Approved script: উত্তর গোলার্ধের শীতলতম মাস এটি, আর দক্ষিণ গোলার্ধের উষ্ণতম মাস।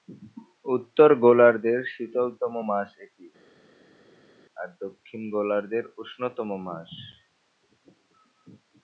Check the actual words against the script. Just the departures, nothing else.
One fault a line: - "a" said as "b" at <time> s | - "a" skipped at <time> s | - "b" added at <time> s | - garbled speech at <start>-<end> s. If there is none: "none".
none